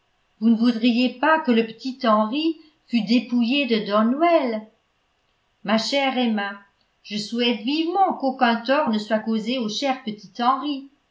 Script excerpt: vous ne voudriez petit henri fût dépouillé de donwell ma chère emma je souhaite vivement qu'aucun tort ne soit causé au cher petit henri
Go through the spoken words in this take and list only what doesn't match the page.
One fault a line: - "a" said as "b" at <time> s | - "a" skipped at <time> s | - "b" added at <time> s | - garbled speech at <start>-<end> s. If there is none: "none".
- "pas que le" added at 1.2 s